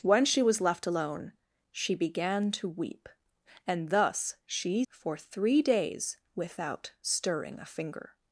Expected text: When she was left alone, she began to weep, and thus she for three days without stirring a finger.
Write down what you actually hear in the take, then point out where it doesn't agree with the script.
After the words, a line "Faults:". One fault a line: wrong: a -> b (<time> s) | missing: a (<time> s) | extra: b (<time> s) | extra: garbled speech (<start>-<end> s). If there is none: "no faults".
When she was left alone, she began to weep, and thus she for three days without stirring a finger.
Faults:
no faults